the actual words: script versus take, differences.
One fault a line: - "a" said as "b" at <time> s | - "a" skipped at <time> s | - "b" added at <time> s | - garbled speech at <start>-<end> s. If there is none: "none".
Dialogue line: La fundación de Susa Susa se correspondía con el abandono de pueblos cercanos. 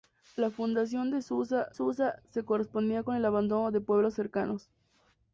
none